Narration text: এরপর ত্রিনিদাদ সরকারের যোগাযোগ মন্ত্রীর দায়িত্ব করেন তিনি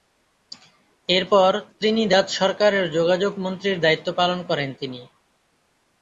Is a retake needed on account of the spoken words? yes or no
yes